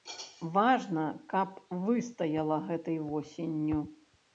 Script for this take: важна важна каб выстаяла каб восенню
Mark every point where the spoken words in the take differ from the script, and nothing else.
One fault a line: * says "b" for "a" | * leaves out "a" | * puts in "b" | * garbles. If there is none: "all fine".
* leaves out "важна"
* says "гэтай" for "каб"